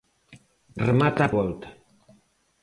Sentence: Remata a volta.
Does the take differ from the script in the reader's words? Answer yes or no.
no